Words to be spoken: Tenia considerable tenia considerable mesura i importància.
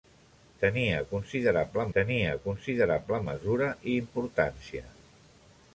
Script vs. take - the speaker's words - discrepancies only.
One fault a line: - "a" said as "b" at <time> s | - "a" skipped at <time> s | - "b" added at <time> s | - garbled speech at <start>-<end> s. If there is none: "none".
none